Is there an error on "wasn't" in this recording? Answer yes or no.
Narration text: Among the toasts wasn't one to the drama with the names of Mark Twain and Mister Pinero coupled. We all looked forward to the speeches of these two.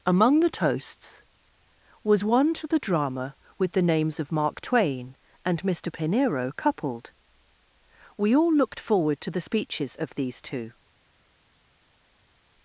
yes